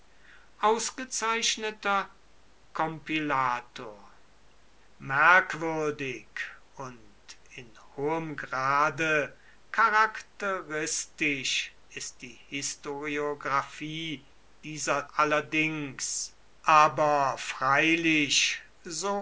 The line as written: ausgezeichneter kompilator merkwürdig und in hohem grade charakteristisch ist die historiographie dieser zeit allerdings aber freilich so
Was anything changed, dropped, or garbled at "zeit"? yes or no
yes